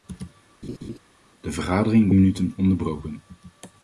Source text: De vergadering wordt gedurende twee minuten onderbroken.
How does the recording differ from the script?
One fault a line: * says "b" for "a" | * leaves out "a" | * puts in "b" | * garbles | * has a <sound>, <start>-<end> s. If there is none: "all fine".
* has a laugh, 0.6-1.0 s
* leaves out "wordt gedurende twee"